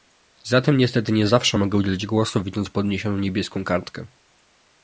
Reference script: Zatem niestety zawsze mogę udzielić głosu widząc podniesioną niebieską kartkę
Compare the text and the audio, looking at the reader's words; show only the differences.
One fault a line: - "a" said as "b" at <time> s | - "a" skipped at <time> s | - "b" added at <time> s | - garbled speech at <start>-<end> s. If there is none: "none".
- "nie" added at 1.1 s